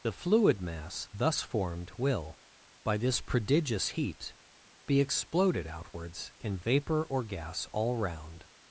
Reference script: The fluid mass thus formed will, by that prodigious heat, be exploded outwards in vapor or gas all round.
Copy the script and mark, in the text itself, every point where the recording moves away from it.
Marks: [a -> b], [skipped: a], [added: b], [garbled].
The fluid mass thus formed will, by [that -> this] prodigious heat, be exploded outwards in vapor or gas all round.